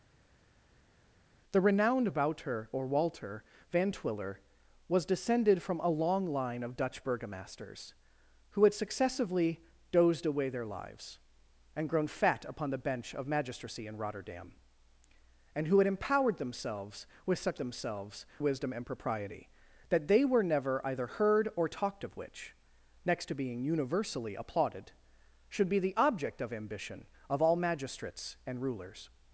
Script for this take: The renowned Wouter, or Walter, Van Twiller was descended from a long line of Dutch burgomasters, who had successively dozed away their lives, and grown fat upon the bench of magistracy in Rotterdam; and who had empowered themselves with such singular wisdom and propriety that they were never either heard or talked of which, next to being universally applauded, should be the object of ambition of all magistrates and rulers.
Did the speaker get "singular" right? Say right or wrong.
wrong